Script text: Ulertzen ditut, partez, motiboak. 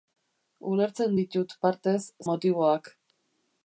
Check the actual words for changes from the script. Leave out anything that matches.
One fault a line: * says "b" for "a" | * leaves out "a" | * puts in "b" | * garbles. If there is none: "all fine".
all fine